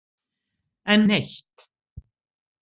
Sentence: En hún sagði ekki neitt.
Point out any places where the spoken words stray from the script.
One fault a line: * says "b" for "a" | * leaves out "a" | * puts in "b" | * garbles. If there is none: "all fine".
* leaves out "hún sagði ekki"